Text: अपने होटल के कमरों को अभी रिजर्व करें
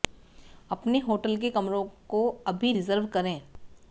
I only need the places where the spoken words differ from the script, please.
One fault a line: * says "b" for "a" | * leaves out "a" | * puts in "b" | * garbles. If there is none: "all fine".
all fine